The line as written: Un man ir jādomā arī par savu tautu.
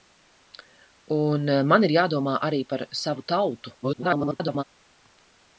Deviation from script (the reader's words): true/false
true